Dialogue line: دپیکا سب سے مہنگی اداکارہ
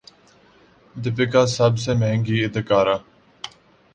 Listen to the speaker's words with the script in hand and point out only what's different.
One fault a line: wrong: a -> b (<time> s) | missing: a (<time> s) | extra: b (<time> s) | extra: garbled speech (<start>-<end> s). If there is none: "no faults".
no faults